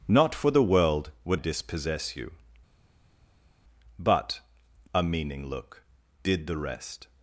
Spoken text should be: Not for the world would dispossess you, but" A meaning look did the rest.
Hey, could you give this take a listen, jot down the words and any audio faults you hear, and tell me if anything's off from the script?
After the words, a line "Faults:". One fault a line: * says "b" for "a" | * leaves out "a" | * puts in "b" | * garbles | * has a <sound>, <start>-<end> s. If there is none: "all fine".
Not for the world would dispossess you, but" A meaning look did the rest.
Faults:
all fine